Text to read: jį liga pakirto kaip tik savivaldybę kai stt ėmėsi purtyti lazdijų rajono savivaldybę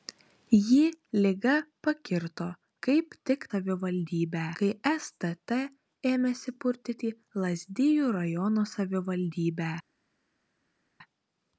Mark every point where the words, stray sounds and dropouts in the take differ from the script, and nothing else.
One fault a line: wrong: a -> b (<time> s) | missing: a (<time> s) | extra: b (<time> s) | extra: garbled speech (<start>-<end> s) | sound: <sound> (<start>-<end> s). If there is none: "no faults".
no faults